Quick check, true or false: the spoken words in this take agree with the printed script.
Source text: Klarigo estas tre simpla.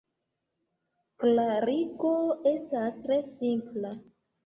true